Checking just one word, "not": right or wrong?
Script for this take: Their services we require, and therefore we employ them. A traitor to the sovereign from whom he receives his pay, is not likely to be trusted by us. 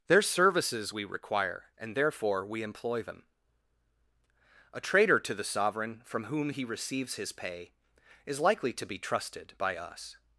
wrong